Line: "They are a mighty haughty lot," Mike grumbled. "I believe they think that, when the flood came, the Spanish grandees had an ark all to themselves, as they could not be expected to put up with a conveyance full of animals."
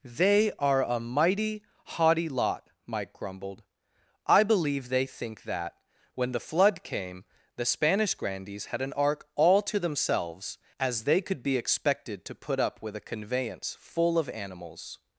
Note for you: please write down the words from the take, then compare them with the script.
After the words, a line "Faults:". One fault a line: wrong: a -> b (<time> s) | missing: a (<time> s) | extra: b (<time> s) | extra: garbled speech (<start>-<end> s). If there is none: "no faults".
"They are a mighty haughty lot," Mike grumbled. "I believe they think that, when the flood came, the Spanish grandees had an ark all to themselves, as they could be expected to put up with a conveyance full of animals."
Faults:
missing: not (11.4 s)